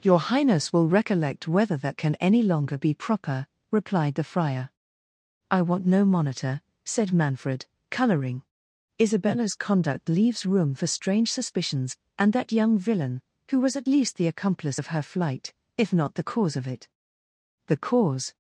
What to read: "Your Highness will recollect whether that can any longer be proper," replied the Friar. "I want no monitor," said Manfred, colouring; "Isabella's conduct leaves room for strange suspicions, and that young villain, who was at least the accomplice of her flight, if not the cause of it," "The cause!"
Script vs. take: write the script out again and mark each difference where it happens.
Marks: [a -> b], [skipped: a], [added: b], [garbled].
"Your Highness will recollect whether that can any longer be proper," replied the Friar. "I want no monitor," said Manfred, colouring; "Isabella's conduct leaves room for strange suspicions, and that young villain, who was at least the accomplice of her flight, if not the cause of it," "The cause!"